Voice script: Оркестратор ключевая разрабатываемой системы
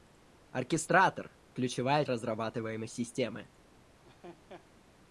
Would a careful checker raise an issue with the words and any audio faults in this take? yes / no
yes